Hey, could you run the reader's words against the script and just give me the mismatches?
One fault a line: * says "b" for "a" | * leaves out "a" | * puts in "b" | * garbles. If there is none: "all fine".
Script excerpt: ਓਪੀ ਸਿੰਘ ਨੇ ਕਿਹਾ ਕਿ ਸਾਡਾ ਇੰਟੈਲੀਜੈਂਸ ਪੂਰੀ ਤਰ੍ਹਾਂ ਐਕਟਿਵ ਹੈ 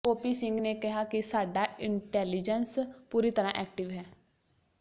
all fine